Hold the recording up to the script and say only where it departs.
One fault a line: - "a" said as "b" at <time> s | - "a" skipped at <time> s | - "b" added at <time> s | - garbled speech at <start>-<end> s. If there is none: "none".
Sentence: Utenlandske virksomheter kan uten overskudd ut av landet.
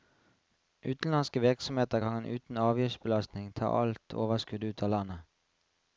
- "avgiftsbelastning ta alt" added at 2.6 s